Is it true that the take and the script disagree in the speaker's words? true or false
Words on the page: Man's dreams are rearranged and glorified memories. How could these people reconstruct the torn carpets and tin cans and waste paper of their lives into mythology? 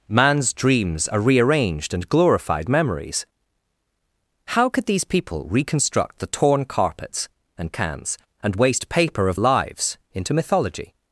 true